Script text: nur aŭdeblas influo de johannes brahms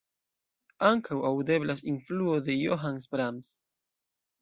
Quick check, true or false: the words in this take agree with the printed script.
false